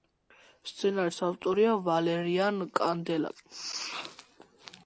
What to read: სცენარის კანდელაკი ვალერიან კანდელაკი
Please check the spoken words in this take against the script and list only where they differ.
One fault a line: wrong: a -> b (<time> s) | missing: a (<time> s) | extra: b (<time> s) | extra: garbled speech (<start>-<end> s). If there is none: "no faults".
wrong: კანდელაკი -> ავტორია (1.3 s)